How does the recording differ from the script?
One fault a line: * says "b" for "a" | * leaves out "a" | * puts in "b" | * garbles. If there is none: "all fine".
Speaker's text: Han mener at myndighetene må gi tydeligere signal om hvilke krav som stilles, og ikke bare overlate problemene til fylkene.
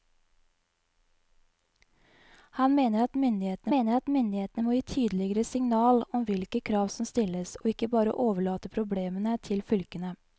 * puts in "mener at myndighetene"